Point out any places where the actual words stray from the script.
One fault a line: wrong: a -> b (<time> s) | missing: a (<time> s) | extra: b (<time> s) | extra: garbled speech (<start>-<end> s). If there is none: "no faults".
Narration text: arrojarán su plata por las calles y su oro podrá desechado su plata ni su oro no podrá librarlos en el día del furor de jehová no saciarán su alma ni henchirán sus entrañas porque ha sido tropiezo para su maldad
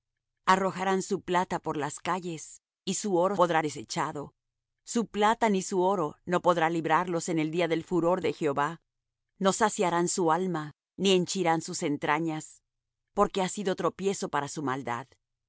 no faults